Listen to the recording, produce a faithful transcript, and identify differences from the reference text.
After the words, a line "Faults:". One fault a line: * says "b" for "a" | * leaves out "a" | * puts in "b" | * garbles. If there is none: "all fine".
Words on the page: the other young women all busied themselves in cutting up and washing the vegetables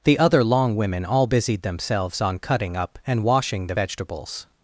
the other long women all busied themselves on cutting up and washing the vegetables
Faults:
* says "long" for "young"
* says "on" for "in"